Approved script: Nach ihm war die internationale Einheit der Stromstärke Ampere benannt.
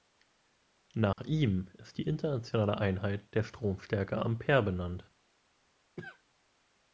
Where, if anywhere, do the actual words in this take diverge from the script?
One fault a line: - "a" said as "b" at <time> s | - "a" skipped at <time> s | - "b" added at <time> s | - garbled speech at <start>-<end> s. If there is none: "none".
- "war" said as "ist" at 1.8 s